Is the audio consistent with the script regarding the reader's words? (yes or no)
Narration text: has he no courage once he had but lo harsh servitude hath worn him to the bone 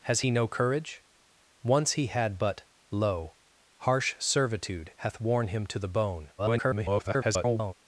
no